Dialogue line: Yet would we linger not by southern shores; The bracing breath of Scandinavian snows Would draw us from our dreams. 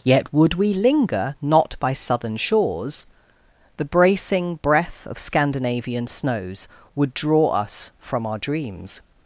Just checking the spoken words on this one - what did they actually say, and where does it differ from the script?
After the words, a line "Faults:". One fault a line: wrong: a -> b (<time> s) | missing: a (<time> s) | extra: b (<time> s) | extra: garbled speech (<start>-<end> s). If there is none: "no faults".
Yet would we linger not by southern shores; The bracing breath of Scandinavian snows Would draw us from our dreams.
Faults:
no faults